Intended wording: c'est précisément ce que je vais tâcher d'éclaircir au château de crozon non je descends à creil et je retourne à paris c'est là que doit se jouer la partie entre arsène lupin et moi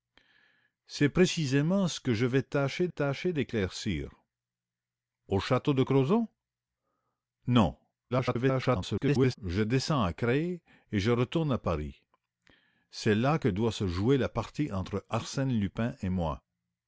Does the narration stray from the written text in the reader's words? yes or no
yes